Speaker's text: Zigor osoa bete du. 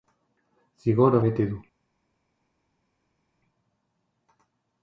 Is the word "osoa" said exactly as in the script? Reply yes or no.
no